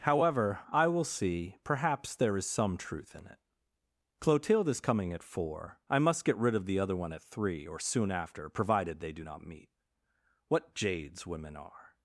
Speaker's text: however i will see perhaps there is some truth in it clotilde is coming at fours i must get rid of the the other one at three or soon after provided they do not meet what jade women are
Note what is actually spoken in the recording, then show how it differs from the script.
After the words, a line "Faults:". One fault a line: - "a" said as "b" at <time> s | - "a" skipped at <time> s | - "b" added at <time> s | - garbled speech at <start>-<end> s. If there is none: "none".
however i will see perhaps there is some truth in it clotilde is coming at four i must get rid of the other one at three or soon after provided they do not meet what jades women are
Faults:
- "fours" said as "four" at 5.2 s
- "the" skipped at 6.8 s
- "jade" said as "jades" at 10.8 s